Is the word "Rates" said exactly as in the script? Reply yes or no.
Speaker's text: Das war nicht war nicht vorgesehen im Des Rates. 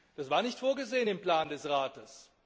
yes